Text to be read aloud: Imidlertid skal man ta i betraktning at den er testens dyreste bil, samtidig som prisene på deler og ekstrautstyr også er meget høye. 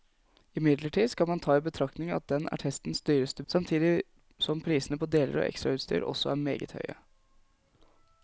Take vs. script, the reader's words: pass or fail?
fail